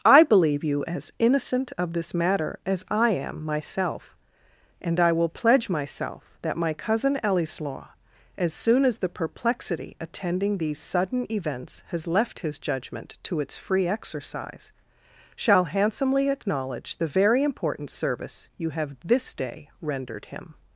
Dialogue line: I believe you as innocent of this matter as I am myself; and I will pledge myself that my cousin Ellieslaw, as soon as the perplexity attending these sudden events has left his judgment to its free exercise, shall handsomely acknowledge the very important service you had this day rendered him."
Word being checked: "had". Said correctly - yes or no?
no